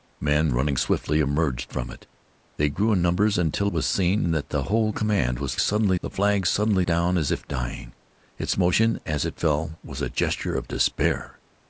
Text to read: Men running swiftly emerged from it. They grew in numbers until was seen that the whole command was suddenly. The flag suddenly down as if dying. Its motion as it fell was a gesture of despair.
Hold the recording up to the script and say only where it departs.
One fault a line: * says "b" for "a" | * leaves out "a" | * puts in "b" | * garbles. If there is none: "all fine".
all fine